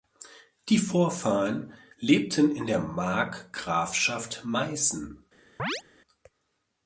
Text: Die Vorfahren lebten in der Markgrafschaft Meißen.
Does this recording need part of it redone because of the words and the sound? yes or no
yes